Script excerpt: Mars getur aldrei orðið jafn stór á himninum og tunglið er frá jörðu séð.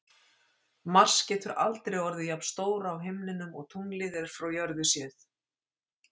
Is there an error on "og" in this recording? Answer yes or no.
no